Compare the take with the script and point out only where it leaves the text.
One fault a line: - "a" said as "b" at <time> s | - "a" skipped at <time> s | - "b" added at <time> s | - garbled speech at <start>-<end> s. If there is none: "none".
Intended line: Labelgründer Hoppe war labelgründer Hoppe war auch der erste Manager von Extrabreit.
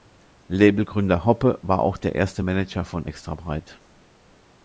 - "labelgründer Hoppe war" skipped at 1.8 s